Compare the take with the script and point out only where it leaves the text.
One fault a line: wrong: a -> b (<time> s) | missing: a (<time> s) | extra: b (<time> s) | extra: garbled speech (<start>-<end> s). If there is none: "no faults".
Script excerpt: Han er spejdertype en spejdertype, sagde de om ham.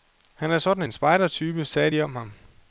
wrong: spejdertype -> sådan (0.6 s)